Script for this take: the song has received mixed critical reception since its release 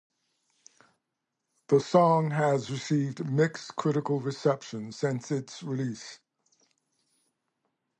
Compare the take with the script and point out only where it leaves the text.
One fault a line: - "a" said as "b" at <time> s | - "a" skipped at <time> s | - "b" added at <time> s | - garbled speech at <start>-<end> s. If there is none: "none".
none